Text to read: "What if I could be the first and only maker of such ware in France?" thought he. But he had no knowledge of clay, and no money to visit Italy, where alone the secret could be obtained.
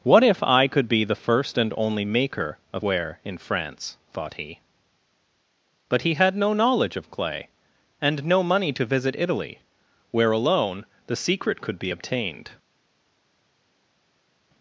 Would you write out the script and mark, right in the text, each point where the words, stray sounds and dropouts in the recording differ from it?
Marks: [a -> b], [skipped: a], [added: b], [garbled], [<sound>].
"What if I could be the first and only maker of [skipped: such] ware in France?" thought he. But he had no knowledge of clay, and no money to visit Italy, where alone the secret could be obtained.